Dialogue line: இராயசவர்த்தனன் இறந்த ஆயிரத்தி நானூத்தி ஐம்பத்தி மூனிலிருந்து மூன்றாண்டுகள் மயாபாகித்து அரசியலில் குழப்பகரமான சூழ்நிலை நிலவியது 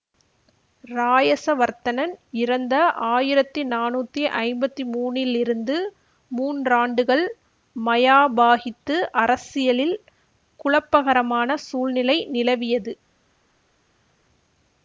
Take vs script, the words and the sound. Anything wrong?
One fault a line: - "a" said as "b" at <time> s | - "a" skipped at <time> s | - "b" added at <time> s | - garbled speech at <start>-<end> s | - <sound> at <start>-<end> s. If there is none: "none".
none